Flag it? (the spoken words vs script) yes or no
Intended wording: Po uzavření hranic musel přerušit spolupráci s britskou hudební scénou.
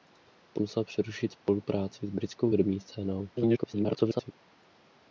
yes